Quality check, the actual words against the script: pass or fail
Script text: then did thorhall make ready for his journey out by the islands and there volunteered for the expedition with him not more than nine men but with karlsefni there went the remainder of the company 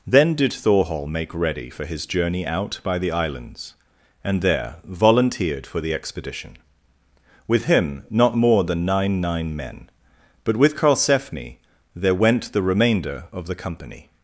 fail